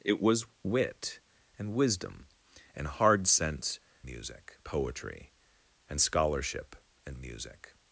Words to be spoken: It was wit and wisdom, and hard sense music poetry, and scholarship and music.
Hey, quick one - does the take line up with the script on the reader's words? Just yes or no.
yes